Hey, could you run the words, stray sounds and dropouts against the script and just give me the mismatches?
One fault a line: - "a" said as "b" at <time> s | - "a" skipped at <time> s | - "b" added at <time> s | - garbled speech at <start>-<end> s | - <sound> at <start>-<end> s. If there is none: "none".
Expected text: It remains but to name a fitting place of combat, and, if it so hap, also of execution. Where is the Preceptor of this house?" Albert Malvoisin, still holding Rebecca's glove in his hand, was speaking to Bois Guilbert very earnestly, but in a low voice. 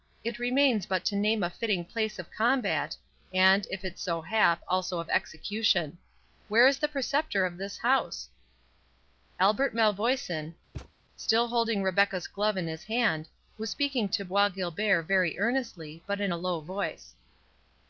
- thud at 10.7-10.9 s